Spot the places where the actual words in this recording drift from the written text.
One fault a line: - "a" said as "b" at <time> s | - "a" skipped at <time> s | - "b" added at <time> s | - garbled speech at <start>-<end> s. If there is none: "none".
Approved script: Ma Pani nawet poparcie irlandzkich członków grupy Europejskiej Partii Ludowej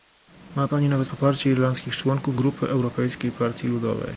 none